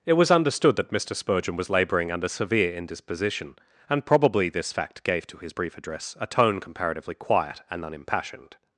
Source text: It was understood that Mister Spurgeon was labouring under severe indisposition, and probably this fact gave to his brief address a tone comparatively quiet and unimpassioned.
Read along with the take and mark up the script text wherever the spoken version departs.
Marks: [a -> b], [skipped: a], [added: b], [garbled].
It was understood that Mister Spurgeon was labouring under severe indisposition, and probably this fact gave to his brief address a tone comparatively quiet and unimpassioned.